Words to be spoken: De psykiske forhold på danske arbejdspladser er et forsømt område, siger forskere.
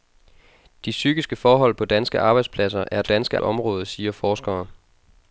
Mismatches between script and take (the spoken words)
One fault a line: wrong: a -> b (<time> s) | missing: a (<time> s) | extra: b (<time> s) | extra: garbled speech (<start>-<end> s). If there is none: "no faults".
wrong: forsømt -> danske (3.0 s)